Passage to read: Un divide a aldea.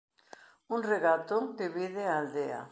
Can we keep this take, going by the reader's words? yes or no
no